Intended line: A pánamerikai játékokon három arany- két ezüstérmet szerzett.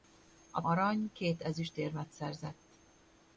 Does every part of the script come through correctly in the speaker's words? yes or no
no